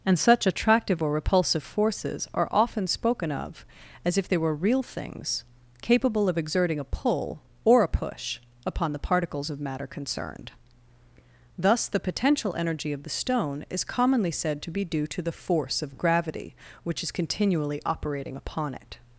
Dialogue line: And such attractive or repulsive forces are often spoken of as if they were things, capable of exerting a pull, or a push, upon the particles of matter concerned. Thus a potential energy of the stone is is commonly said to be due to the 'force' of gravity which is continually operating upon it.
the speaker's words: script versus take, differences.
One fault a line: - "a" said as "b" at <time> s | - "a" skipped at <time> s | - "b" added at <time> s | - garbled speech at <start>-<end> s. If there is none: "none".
- "real" added at 4.5 s
- "a" said as "the" at 11.9 s
- "is" skipped at 13.8 s